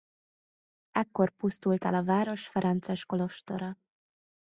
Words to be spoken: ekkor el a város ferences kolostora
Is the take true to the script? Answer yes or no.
no